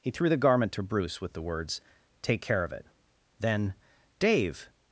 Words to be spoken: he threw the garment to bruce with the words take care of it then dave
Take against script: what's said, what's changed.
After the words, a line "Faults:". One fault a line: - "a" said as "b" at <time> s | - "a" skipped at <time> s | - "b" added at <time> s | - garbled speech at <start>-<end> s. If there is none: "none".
he threw the garment to bruce with the words take care of it then dave
Faults:
none